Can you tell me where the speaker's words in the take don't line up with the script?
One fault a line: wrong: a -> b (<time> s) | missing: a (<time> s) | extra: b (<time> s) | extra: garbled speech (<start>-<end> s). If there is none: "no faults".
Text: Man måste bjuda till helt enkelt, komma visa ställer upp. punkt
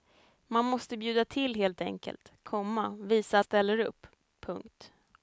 no faults